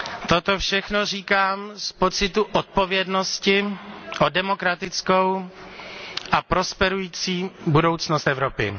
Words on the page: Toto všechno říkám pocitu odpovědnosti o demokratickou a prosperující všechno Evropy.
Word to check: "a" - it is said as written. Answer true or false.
true